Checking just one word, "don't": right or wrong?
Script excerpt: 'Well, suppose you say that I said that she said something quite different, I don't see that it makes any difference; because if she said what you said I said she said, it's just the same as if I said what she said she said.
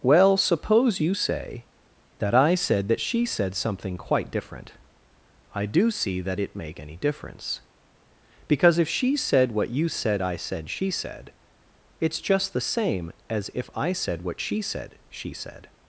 wrong